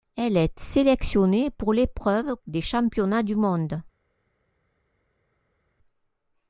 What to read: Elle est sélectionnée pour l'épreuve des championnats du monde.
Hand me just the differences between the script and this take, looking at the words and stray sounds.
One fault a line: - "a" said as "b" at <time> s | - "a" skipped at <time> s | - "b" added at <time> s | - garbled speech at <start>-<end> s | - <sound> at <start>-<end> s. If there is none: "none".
none